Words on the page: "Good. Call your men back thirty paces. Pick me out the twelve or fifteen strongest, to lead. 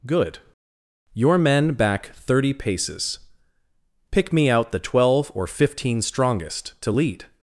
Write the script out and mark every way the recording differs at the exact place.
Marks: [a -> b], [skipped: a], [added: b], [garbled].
"Good. [skipped: Call] your men back thirty paces. Pick me out the twelve or fifteen strongest, to lead.